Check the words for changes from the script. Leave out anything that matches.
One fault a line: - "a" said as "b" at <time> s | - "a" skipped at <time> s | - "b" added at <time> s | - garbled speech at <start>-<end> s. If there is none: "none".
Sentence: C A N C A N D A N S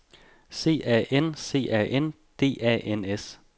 none